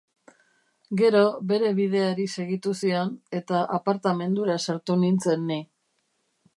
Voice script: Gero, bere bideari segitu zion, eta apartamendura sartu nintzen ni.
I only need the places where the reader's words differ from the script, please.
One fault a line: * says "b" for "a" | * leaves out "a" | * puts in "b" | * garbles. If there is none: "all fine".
all fine